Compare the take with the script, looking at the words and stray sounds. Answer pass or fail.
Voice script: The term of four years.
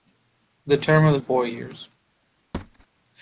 fail